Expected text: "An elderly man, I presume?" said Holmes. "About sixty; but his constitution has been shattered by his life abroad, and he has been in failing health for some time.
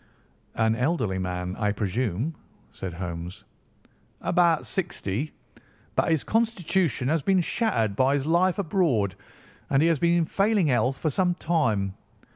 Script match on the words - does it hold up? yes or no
yes